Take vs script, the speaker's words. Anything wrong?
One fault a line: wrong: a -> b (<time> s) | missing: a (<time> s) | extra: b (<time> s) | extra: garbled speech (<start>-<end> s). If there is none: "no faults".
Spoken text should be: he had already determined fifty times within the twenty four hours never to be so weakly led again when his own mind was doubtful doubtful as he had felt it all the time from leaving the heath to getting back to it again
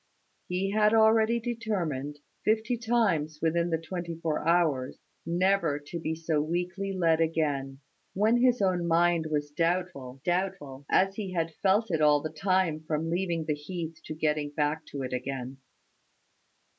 no faults